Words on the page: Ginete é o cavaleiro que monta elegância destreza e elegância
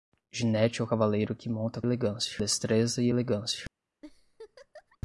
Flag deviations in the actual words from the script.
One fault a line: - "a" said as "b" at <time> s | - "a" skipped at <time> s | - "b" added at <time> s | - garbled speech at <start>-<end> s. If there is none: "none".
none